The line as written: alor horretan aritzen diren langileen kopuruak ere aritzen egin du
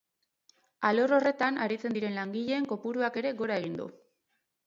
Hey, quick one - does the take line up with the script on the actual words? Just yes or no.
no